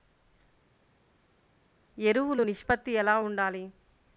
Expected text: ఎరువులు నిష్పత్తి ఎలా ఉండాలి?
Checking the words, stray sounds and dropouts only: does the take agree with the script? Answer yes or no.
yes